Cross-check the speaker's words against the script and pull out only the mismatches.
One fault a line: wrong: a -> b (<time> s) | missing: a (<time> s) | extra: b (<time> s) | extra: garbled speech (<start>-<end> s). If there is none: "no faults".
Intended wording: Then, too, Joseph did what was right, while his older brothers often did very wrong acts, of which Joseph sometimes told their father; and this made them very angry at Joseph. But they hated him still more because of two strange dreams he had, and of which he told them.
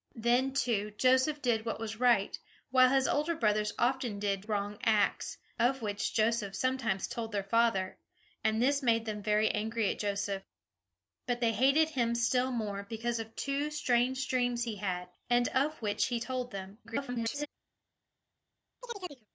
missing: very (4.4 s)
extra: garbled speech (16.8-17.5 s)